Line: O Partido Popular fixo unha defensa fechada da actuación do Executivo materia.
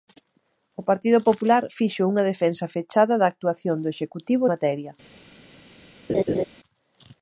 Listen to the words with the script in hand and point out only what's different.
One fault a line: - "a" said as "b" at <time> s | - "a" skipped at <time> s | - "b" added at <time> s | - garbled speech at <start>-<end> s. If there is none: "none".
none